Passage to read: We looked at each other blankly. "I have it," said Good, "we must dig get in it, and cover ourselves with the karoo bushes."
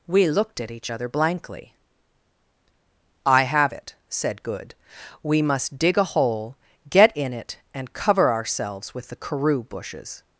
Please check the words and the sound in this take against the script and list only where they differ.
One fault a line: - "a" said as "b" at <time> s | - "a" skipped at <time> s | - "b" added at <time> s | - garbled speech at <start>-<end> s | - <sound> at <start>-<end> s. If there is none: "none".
- "a hole" added at 6.0 s